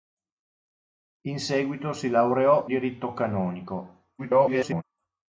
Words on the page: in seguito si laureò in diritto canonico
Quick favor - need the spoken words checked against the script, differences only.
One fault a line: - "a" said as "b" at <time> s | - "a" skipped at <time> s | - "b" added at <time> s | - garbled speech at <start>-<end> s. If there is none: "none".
- "in" skipped at 2.7 s
- garbled speech at 4.2-4.8 s